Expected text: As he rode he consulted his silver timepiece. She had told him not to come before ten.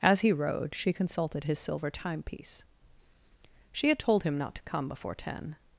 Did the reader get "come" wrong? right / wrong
right